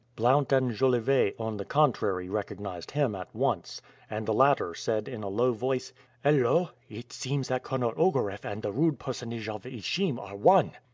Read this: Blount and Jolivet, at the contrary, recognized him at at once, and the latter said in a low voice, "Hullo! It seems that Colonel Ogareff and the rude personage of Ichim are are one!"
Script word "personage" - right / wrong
right